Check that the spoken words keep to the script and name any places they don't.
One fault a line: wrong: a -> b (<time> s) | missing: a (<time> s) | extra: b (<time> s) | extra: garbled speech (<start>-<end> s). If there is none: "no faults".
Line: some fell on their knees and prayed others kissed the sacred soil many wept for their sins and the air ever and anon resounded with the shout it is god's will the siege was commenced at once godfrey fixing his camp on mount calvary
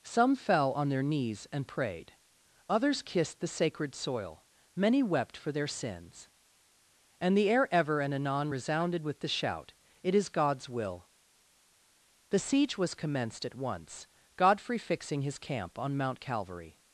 no faults